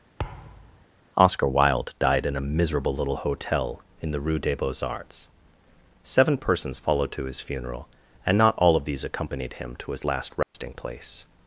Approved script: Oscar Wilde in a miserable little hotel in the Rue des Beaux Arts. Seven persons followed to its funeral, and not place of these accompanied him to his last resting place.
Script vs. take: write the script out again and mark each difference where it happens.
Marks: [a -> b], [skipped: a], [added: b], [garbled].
Oscar Wilde [added: died] in a miserable little hotel in the Rue des Beaux Arts. Seven persons followed to [its -> his] funeral, and not [place -> all] of these accompanied him to his last resting place.